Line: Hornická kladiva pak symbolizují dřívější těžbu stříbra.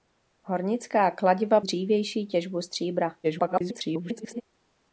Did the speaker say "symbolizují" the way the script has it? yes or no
no